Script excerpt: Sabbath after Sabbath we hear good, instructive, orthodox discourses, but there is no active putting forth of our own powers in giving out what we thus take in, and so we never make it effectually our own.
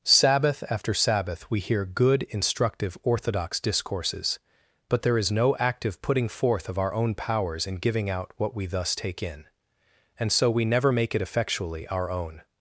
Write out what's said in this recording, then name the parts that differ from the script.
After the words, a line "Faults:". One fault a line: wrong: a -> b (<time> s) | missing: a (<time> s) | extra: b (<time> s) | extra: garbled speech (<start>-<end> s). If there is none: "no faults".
Sabbath after Sabbath we hear good, instructive, orthodox discourses, but there is no active putting forth of our own powers in giving out what we thus take in, and so we never make it effectually our own.
Faults:
no faults